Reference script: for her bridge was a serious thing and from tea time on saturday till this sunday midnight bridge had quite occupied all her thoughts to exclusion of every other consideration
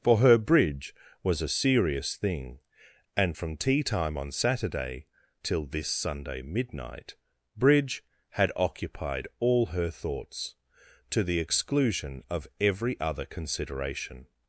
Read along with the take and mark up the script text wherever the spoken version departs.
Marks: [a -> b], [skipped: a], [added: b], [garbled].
for her bridge was a serious thing and from tea time on saturday till this sunday midnight bridge had [skipped: quite] occupied all her thoughts to [added: the] exclusion of every other consideration